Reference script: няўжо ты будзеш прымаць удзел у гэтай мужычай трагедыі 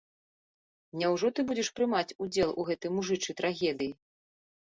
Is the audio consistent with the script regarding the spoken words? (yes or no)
yes